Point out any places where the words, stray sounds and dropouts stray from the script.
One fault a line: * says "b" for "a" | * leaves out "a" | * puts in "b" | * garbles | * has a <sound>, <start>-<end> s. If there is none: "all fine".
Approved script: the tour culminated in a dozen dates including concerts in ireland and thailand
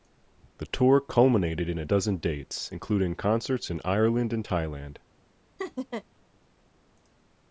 * has a laugh, 5.6-6.0 s